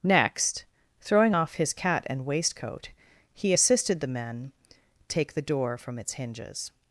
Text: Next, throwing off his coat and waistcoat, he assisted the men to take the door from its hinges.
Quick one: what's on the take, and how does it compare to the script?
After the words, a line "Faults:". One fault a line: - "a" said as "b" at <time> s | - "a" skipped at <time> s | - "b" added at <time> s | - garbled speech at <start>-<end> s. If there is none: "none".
Next, throwing off his cat and waistcoat, he assisted the men take the door from its hinges.
Faults:
- "coat" said as "cat" at 1.7 s
- "to" skipped at 4.5 s